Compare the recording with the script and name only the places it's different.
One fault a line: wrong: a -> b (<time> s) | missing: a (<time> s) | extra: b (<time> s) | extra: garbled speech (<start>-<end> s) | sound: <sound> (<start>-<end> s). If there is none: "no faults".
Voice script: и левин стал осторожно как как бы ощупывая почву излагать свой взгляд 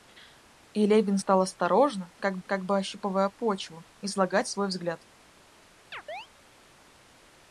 sound: chirp (5.9-6.3 s)